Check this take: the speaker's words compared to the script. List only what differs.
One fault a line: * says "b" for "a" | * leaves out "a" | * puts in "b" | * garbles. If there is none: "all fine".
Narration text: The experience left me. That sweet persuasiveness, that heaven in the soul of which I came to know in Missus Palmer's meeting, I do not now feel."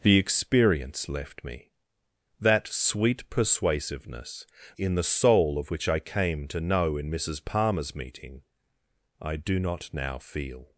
* leaves out "that heaven"